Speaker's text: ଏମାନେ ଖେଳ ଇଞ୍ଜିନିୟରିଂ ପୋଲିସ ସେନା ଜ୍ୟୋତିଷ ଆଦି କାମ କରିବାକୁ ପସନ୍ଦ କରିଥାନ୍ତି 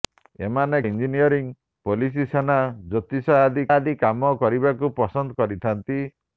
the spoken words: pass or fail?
fail